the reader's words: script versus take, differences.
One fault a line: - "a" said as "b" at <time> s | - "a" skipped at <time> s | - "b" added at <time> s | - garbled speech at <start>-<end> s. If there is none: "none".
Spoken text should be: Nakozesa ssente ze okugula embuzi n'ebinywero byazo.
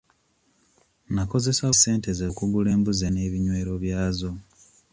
none